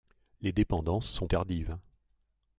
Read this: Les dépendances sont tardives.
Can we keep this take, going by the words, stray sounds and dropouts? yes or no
yes